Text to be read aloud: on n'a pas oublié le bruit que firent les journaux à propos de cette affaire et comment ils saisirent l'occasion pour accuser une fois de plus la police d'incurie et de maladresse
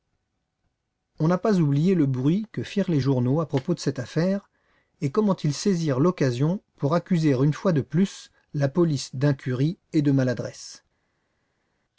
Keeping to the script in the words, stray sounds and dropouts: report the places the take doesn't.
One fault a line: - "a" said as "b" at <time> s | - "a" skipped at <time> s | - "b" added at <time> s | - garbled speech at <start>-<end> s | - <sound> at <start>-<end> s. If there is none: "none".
none